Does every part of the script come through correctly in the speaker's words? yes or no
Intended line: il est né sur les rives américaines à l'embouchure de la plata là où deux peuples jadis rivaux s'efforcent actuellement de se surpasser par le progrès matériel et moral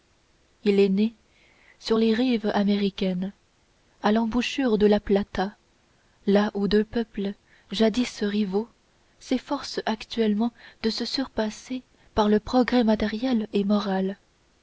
yes